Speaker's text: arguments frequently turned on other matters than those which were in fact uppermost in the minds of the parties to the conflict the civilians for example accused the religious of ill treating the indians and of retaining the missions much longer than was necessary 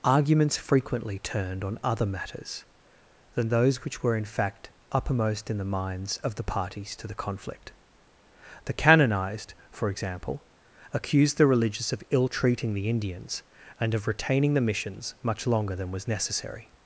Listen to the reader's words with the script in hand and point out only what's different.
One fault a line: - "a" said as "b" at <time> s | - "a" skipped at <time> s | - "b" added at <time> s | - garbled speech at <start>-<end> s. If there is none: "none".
- "civilians" said as "canonized" at 8.7 s